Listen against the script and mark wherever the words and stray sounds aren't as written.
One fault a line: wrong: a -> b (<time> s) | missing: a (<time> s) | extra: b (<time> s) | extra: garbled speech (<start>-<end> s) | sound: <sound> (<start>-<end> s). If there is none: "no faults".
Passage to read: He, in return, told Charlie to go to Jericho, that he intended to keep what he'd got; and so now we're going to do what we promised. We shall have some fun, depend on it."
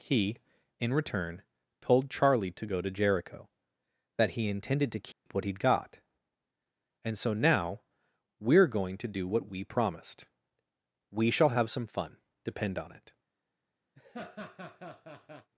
sound: dropout (5.1-5.3 s)
sound: laugh (14.0-15.5 s)